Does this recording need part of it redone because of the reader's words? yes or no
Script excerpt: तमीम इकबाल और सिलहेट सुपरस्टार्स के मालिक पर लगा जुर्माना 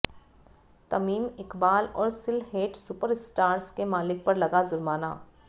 no